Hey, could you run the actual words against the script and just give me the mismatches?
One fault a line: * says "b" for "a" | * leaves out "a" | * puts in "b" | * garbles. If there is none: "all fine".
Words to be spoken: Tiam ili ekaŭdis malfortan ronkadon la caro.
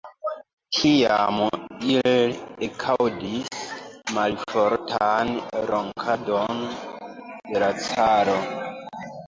* puts in "de"